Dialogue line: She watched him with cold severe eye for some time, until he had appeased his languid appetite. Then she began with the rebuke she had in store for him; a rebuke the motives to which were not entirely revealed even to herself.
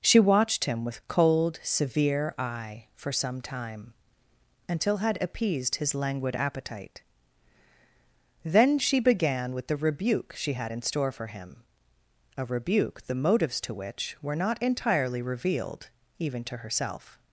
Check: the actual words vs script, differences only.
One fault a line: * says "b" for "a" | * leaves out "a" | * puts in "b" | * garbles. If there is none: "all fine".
* leaves out "he"